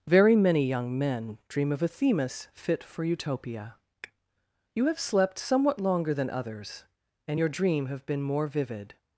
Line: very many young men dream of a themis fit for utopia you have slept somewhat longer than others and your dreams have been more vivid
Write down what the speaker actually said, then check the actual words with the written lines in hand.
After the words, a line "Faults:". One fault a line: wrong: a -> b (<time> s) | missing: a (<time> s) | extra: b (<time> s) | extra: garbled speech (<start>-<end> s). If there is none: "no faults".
very many young men dream of a themis fit for utopia you have slept somewhat longer than others and your dream have been more vivid
Faults:
wrong: dreams -> dream (7.5 s)